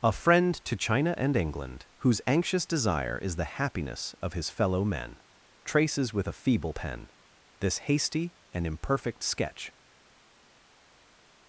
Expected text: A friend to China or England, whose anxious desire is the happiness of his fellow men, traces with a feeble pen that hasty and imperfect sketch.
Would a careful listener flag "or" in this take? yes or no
yes